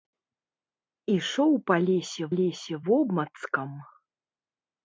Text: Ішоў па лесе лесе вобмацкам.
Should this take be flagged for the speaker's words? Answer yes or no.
no